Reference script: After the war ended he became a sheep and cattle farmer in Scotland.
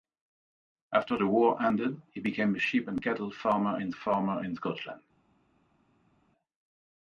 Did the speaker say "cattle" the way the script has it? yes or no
yes